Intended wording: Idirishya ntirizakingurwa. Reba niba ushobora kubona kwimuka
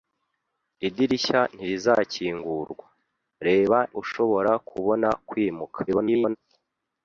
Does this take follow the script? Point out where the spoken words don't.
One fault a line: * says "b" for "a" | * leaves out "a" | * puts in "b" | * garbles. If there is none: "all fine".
* leaves out "niba"
* garbles